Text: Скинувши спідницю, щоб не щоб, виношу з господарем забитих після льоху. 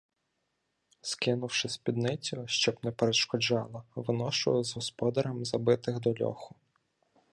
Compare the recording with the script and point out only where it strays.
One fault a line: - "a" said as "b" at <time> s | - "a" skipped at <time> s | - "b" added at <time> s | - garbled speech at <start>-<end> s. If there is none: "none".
- "щоб" said as "перешкоджала" at 2.9 s
- "після" said as "до" at 6.0 s